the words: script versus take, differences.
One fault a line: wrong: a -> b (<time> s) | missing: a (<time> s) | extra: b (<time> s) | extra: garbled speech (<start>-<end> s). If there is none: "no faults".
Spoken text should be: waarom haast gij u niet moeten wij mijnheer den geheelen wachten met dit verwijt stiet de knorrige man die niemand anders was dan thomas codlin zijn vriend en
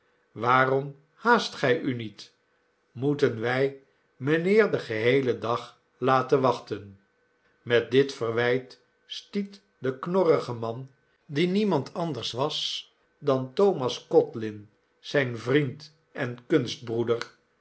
extra: dag laten (5.4 s)